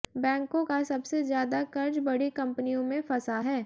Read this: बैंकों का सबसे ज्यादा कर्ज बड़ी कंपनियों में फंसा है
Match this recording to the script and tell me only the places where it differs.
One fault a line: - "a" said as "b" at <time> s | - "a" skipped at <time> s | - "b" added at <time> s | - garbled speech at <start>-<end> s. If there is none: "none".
none